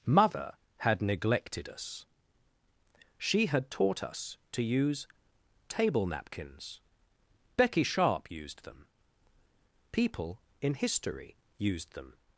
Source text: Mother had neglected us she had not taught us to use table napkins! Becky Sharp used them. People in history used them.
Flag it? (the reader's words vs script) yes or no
yes